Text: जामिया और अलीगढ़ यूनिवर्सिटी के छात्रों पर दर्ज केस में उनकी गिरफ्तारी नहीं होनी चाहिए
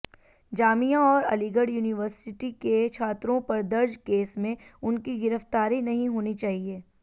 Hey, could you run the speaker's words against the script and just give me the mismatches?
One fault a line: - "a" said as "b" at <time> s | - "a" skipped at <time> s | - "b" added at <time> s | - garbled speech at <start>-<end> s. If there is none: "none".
none